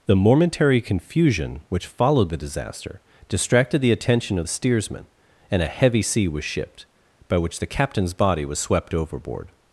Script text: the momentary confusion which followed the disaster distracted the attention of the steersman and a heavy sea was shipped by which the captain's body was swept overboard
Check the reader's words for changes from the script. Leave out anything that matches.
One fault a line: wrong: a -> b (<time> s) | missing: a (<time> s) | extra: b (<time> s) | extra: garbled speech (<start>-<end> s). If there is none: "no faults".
no faults